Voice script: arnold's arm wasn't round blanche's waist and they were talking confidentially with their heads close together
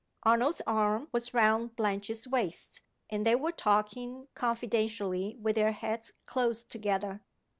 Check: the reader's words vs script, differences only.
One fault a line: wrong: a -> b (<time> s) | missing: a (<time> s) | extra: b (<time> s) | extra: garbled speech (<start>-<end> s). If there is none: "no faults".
wrong: wasn't -> was (1.1 s)